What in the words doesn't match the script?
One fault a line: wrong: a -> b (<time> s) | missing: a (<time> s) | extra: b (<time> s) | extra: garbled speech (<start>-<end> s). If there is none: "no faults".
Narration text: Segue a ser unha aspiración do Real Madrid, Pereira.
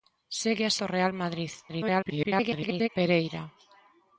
missing: ser unha aspiración (0.8 s)
extra: garbled speech (1.7-2.9 s)